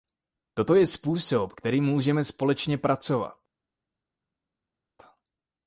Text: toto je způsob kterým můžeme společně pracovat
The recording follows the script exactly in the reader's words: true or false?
true